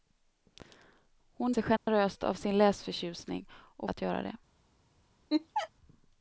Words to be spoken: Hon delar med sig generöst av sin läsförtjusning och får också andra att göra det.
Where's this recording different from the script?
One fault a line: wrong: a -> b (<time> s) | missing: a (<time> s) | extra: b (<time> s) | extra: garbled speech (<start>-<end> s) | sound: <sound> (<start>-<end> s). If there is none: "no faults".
missing: delar med (1.5 s)
sound: dropout (1.8-1.9 s)
missing: får också andra (3.9 s)
sound: laugh (5.3-5.7 s)